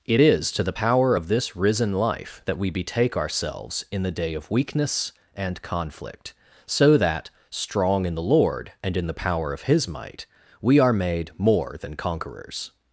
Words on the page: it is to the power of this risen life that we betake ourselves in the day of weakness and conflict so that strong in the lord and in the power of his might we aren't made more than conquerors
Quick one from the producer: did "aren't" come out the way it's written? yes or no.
no